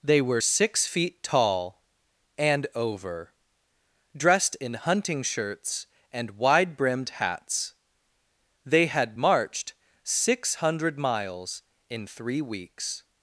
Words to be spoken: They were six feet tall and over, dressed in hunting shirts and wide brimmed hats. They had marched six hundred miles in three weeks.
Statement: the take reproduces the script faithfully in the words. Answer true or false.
true